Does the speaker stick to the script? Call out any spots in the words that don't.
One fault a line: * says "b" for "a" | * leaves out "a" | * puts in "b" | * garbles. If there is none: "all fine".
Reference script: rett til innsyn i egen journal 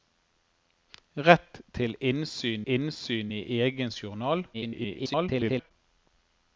* puts in "innsyn"
* garbles